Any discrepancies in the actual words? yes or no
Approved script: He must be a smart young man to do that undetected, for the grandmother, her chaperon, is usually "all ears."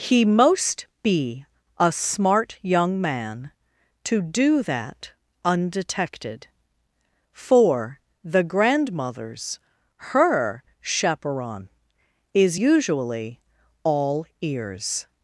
yes